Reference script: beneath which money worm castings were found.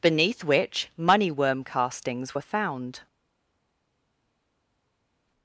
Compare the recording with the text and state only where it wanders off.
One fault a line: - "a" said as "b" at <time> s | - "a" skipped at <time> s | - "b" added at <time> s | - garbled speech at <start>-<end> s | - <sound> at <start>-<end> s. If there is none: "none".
none